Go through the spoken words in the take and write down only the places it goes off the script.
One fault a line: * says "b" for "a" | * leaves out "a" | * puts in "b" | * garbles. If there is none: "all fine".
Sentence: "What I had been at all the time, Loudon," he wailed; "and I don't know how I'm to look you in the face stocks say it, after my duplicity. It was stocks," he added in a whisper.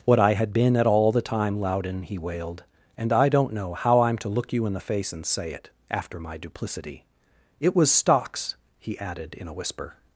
* says "and" for "stocks"